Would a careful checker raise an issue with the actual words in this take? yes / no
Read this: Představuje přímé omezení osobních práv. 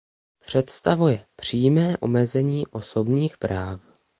no